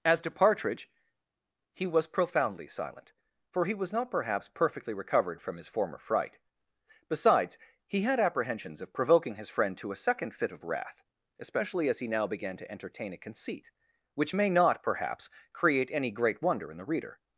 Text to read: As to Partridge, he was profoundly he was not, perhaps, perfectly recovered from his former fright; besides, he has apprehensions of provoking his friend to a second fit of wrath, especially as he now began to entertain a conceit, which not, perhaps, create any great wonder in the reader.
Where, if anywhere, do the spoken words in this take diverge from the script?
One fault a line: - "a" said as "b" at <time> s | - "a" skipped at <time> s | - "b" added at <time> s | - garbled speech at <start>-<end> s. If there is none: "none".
- "silent for" added at 2.7 s
- "has" said as "had" at 8.0 s
- "may" added at 14.3 s